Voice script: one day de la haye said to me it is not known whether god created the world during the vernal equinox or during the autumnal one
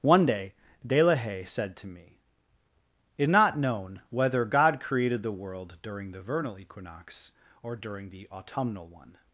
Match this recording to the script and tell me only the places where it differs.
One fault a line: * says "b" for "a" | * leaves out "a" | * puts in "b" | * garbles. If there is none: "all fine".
* leaves out "is"